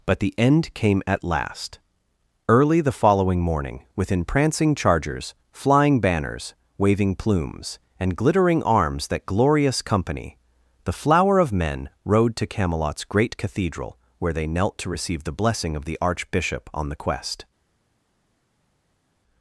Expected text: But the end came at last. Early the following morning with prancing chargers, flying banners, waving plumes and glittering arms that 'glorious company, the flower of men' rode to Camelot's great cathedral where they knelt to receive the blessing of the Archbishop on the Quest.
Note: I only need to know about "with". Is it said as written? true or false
false